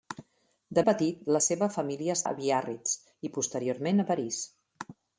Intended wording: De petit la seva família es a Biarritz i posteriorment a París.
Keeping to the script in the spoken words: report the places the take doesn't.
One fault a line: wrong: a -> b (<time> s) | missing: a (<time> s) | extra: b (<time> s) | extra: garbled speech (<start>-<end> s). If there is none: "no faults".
no faults